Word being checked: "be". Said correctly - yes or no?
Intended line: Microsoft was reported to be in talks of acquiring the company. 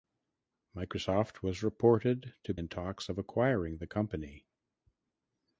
no